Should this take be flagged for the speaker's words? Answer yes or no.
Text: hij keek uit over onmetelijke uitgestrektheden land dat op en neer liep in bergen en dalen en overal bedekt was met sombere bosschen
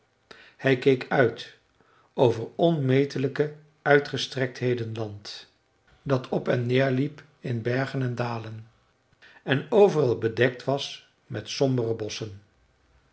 no